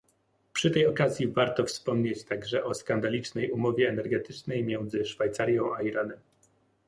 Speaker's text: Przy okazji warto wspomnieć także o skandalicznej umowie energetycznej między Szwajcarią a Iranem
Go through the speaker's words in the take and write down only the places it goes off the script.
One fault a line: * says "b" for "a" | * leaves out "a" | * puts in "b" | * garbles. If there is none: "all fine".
* puts in "tej"